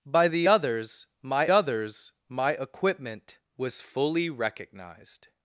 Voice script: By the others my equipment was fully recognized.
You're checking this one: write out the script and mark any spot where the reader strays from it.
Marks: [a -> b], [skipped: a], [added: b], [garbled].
By the others my [added: others my] equipment was fully recognized.